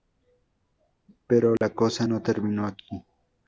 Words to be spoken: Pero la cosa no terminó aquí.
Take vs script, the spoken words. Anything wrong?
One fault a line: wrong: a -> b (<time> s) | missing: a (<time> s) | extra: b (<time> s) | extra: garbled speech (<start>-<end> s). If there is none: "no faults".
no faults